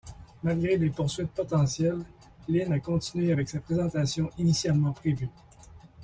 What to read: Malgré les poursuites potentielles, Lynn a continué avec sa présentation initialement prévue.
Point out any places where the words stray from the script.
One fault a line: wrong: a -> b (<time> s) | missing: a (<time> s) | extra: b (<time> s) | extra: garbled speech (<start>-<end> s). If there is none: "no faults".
no faults